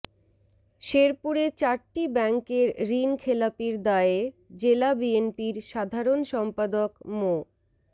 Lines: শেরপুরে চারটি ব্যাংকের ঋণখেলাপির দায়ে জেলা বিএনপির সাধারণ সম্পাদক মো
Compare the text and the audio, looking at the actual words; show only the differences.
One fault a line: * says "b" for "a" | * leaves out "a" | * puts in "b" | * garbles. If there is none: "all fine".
all fine